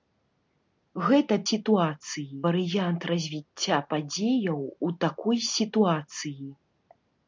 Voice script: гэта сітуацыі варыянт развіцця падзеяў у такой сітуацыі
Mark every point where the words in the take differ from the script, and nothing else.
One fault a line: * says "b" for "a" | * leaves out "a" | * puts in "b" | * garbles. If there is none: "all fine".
all fine